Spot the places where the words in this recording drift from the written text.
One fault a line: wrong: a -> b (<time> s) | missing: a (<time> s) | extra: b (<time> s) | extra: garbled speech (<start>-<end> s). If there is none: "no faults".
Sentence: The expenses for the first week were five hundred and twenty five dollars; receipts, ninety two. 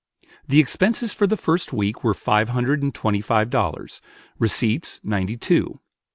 no faults